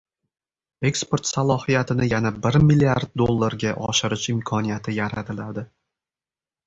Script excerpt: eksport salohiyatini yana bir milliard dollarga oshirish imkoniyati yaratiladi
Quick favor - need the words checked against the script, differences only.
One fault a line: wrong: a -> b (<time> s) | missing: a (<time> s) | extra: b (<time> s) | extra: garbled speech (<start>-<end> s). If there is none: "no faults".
no faults